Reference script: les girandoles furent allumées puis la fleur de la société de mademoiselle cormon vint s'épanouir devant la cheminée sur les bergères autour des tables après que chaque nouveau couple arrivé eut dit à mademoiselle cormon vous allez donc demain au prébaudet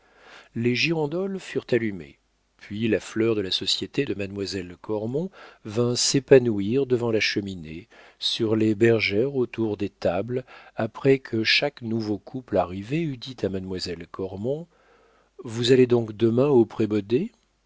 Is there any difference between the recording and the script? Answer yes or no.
no